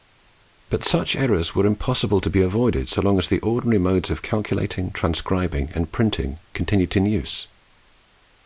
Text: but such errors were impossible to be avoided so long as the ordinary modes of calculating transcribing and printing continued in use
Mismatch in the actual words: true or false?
false